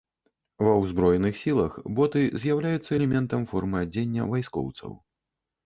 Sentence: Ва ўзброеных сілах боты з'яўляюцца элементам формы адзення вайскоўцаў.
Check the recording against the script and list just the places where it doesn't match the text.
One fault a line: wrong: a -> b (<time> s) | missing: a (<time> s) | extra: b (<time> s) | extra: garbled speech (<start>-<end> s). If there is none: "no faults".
no faults